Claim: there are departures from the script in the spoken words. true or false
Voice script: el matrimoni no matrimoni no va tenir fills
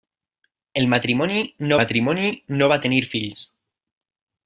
false